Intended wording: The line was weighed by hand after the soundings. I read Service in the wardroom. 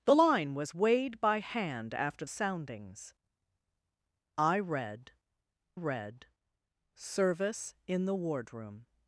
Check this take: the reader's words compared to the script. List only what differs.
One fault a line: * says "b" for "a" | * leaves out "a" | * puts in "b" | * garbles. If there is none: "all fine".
* leaves out "the"
* puts in "read"